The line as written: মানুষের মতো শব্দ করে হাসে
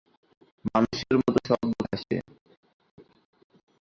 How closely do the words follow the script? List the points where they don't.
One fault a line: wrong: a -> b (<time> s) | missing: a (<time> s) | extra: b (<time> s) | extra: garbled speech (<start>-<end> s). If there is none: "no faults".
missing: করে (1.8 s)